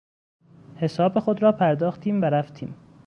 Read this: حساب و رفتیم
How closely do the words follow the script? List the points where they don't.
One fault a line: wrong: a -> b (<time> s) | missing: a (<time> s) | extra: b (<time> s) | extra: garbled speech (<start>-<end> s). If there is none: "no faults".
extra: خود را پرداختیم (1.2 s)